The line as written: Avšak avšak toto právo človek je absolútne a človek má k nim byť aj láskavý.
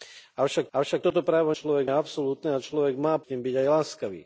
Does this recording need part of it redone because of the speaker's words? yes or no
no